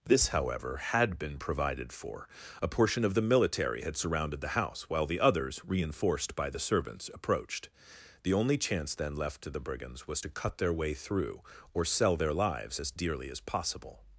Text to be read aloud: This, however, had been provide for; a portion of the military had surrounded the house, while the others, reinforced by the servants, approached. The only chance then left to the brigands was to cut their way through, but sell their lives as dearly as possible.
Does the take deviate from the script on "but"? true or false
true